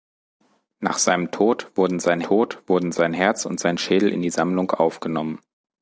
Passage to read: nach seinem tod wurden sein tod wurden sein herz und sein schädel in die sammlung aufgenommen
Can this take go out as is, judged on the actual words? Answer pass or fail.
pass